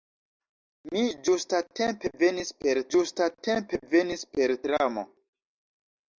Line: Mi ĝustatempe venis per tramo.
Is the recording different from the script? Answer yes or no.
yes